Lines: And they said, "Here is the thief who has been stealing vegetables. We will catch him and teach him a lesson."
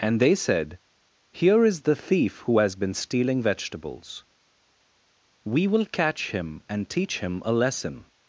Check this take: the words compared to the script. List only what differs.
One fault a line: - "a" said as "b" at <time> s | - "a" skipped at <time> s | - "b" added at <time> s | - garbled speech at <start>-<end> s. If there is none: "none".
none